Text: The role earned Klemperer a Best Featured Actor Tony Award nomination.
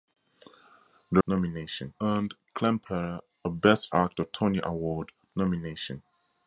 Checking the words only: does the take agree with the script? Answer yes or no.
no